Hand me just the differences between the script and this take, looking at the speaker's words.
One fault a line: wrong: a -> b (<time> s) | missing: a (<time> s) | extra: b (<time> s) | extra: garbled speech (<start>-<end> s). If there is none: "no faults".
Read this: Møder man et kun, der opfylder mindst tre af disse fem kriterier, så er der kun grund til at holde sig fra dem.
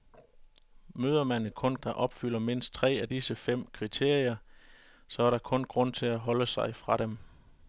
no faults